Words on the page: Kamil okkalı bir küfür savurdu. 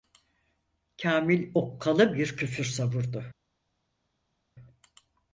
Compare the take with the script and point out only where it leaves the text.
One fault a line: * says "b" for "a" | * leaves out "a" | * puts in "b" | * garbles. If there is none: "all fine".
all fine